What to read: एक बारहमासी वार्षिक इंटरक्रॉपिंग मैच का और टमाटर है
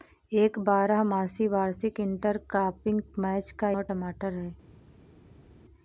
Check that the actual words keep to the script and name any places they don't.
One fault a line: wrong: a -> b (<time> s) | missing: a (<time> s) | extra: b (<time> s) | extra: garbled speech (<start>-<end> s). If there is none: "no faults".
no faults